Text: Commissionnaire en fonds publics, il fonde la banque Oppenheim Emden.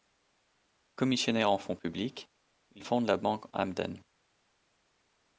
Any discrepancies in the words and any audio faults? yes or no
yes